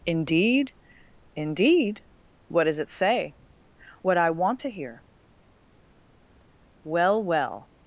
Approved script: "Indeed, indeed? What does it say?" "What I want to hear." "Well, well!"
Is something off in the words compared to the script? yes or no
no